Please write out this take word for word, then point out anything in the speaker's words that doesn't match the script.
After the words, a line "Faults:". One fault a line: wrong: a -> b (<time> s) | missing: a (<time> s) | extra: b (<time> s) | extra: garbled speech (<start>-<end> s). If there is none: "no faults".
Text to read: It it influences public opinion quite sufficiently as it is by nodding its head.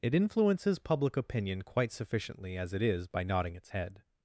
It influences public opinion quite sufficiently as it is by nodding its head.
Faults:
missing: it (0.1 s)